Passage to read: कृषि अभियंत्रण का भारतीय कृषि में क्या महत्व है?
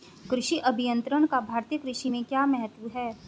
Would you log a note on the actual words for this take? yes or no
no